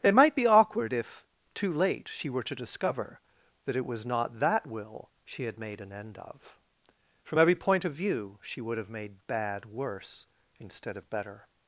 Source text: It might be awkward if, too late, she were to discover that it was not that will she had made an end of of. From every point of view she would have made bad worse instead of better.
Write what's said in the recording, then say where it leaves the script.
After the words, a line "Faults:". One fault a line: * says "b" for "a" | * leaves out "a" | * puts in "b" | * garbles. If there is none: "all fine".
It might be awkward if, too late, she were to discover that it was not that will she had made an end of. From every point of view she would have made bad worse instead of better.
Faults:
* leaves out "of"